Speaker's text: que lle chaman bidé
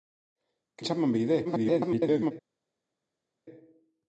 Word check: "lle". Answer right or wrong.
wrong